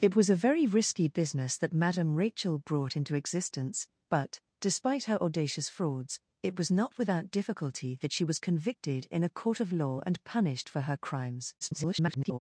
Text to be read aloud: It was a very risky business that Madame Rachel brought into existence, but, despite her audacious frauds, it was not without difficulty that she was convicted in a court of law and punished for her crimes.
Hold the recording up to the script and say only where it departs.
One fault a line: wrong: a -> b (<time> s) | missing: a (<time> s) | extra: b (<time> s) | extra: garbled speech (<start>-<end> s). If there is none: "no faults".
extra: garbled speech (11.6-12.4 s)